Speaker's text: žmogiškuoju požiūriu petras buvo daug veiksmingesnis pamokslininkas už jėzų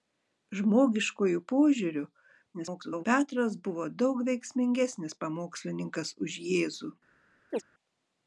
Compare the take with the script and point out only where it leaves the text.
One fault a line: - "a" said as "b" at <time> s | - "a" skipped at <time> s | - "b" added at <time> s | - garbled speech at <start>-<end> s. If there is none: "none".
- garbled speech at 2.5-3.0 s